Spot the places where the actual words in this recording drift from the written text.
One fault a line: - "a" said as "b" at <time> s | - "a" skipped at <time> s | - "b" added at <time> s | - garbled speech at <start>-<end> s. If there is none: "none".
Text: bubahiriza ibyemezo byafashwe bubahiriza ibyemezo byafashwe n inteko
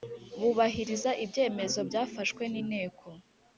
- "bubahiriza ibyemezo byafashwe" skipped at 2.4 s